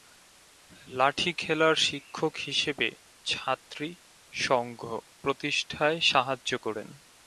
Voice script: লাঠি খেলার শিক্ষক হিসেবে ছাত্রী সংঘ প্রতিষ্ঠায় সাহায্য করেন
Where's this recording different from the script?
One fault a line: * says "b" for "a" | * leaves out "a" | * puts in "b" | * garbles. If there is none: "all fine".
all fine